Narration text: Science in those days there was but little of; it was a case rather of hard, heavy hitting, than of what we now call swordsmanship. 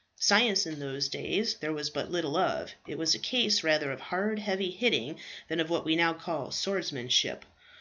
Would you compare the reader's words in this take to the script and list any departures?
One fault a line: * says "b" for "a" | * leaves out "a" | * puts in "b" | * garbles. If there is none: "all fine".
all fine